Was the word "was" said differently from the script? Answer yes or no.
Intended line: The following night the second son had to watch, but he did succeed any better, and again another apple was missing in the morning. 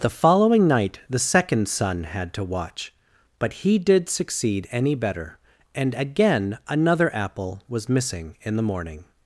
no